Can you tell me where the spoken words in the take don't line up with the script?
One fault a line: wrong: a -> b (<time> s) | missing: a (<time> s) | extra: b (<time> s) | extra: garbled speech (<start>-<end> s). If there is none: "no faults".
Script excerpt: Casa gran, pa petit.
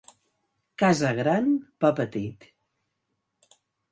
no faults